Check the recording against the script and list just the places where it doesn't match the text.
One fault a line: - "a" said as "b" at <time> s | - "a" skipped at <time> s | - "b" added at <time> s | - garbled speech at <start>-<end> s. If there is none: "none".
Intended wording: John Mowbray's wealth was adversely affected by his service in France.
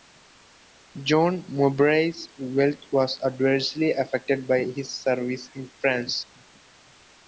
none